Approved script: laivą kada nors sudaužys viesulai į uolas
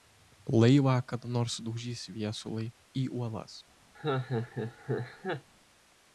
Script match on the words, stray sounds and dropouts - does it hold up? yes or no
no